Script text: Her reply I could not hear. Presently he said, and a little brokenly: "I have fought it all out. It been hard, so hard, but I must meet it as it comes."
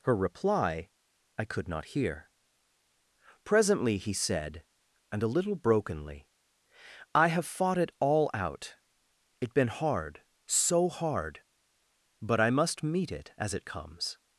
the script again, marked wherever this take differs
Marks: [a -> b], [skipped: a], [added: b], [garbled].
Her reply I could not hear. Presently he said, and a little brokenly: "I have fought it all out. It been hard, so hard, but I must meet it as it comes."